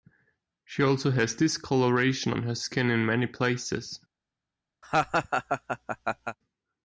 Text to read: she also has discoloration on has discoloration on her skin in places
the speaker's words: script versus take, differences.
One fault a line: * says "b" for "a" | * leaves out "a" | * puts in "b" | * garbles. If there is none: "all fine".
* leaves out "has discoloration on"
* puts in "many"